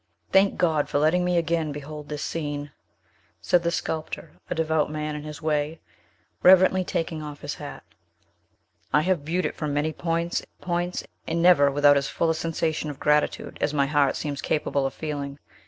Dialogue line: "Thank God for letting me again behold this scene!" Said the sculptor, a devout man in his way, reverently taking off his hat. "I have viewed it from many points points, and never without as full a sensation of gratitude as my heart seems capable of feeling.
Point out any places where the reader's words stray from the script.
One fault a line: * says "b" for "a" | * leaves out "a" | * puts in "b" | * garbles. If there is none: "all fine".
all fine